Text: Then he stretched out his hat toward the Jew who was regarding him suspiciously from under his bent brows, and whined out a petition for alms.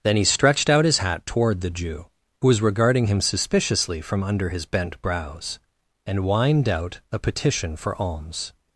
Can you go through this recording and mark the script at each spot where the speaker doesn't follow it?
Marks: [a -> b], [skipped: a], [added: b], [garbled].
Then he stretched out his hat toward the Jew who was regarding him suspiciously from under his bent brows, and whined out a petition for alms.